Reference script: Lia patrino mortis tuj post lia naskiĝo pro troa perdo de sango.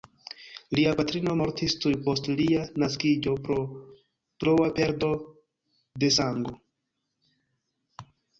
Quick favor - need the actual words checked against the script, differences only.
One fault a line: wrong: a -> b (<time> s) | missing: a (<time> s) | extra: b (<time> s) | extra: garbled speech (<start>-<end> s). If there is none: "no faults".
no faults